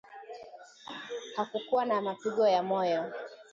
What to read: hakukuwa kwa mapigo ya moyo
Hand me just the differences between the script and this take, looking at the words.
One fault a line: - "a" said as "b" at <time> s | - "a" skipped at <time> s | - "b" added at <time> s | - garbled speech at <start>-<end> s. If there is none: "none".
- "kwa" said as "na" at 1.9 s